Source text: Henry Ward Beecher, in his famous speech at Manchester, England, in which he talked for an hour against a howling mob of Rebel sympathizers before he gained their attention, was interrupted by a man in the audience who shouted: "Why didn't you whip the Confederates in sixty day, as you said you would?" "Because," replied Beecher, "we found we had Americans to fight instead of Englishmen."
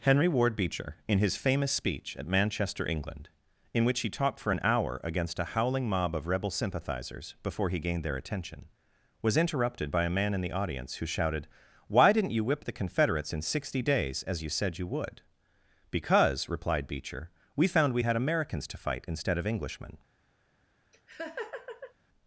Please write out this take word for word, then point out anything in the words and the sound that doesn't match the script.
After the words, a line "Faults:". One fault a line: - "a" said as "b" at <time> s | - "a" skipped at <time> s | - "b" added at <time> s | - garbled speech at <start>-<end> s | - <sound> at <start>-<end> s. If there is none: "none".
Henry Ward Beecher, in his famous speech at Manchester, England, in which he talked for an hour against a howling mob of Rebel sympathizers before he gained their attention, was interrupted by a man in the audience who shouted: "Why didn't you whip the Confederates in sixty days, as you said you would?" "Because," replied Beecher, "we found we had Americans to fight instead of Englishmen."
Faults:
- "day" said as "days" at 13.8 s
- laugh at 20.9-21.9 s